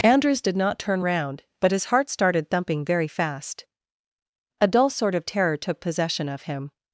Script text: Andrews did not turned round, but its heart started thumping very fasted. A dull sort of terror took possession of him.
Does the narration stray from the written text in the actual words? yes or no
yes